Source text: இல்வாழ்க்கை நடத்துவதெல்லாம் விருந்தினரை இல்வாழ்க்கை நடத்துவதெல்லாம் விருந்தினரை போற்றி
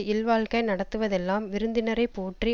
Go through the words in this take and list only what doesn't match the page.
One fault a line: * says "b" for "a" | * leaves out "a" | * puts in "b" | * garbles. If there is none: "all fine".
* leaves out "இல்வாழ்க்கை நடத்துவதெல்லாம் விருந்தினரை"